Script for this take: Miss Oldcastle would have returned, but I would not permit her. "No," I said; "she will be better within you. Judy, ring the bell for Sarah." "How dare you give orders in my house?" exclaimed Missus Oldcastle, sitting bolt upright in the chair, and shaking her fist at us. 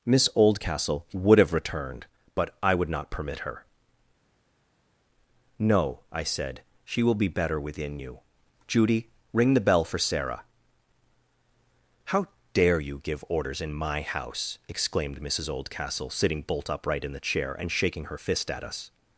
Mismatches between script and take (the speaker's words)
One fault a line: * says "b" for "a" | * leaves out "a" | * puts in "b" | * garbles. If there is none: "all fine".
all fine